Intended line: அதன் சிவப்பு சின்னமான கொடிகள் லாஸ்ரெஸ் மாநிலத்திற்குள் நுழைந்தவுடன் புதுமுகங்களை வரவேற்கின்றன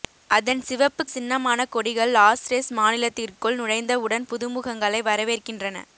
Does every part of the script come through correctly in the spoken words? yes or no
yes